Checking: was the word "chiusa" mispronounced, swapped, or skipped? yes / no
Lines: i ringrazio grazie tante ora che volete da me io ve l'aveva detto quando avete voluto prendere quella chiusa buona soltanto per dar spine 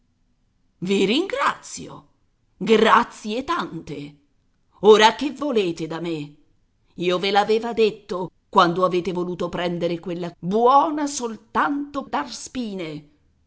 yes